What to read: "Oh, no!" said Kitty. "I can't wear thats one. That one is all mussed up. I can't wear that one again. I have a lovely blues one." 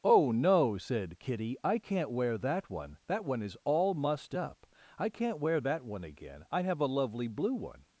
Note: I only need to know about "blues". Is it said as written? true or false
false